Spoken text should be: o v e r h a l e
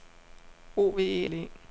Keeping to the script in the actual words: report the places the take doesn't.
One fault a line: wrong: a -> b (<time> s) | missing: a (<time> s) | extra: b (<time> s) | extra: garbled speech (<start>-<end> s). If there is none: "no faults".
missing: r h a (1.3 s)